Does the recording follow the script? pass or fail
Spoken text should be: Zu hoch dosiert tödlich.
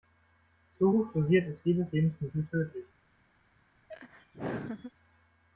fail